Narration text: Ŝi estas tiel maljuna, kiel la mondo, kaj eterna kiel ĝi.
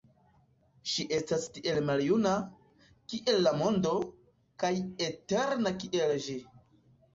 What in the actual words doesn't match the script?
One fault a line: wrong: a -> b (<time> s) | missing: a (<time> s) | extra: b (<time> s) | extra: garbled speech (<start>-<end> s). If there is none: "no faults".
no faults